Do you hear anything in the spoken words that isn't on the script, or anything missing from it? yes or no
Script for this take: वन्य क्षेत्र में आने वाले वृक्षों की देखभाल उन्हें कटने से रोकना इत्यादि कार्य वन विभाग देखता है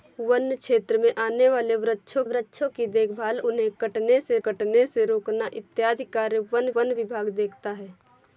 yes